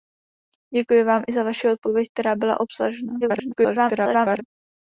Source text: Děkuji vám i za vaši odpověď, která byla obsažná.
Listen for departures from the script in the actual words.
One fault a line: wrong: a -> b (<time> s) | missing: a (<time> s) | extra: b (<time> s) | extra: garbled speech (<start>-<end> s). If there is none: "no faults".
extra: garbled speech (3.2-4.4 s)